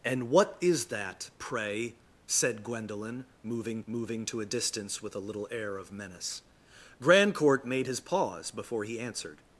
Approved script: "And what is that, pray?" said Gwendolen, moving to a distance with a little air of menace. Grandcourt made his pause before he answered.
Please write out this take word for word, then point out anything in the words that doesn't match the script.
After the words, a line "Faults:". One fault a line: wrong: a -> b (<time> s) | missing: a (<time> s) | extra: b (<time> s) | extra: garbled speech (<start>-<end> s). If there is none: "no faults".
"And what is that, pray?" said Gwendolen, moving moving to a distance with a little air of menace. Grandcourt made his pause before he answered.
Faults:
extra: moving (3.9 s)